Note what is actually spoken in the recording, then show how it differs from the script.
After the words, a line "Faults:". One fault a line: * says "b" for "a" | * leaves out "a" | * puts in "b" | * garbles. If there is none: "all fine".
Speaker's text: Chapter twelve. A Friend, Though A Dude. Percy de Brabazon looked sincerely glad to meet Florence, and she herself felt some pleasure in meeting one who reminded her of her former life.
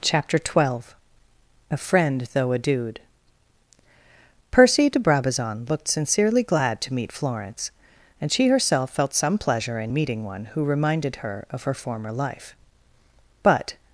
Chapter twelve. A Friend, Though A Dude. Percy de Brabazon looked sincerely glad to meet Florence, and she herself felt some pleasure in meeting one who reminded her of her former life. But
Faults:
* puts in "But"